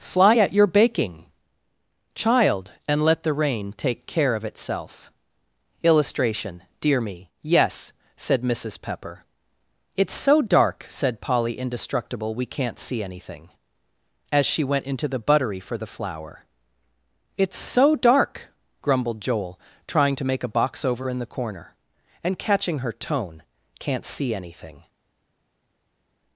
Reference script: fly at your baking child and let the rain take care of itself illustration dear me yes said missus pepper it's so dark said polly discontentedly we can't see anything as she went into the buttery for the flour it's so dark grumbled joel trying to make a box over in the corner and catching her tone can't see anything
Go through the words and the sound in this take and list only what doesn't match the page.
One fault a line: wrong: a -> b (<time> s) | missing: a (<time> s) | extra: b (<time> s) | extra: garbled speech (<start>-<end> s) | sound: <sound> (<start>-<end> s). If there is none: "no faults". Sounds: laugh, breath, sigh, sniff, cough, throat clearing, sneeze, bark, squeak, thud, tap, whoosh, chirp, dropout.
wrong: discontentedly -> indestructible (11.6 s)